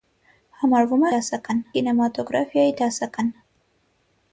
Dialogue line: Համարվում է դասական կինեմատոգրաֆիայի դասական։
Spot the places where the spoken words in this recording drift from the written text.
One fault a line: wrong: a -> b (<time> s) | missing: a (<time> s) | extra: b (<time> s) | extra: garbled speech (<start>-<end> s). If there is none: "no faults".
no faults